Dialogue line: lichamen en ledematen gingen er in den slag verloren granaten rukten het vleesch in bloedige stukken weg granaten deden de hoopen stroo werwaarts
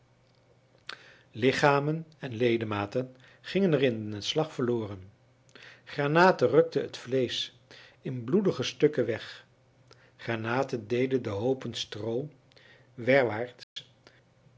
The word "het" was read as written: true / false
true